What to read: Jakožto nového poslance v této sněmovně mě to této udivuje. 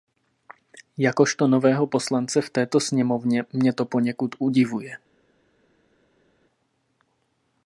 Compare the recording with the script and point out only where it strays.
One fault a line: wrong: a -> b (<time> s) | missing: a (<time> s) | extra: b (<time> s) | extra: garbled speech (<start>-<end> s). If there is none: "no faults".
wrong: této -> poněkud (3.9 s)